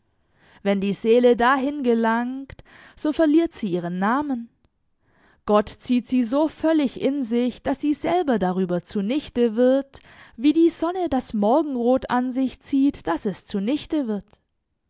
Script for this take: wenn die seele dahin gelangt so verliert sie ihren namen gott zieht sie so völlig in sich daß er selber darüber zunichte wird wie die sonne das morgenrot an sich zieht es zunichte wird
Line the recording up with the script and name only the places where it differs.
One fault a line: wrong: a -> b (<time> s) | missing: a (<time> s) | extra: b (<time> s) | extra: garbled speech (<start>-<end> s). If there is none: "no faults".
wrong: er -> sie (7.8 s)
extra: daß (13.1 s)